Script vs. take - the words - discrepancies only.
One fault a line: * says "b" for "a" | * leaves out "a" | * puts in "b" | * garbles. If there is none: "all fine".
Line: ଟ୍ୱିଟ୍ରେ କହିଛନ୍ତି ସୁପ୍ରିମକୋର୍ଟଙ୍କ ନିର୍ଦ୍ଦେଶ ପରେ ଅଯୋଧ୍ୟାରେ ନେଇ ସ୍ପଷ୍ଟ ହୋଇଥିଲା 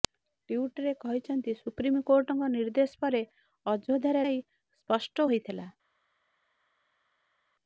all fine